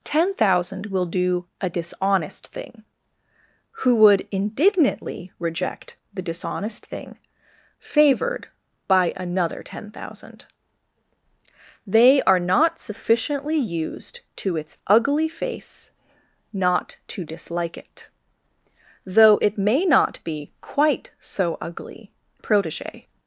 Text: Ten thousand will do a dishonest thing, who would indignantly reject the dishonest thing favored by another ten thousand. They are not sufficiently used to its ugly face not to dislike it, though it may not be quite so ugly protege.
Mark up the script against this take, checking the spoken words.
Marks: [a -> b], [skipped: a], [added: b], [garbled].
Ten thousand will do a dishonest thing, who would indignantly reject the dishonest thing favored by another ten thousand. They are not sufficiently used to its ugly face not to dislike it, though it may not be quite so ugly protege.